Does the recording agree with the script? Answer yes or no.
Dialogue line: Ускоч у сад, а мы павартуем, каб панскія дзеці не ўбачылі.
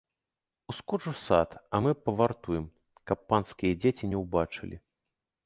yes